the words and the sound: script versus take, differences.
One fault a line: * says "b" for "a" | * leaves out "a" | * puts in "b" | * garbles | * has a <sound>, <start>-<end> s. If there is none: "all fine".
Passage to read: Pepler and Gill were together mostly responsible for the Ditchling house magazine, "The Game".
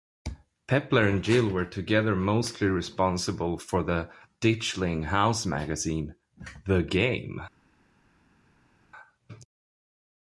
all fine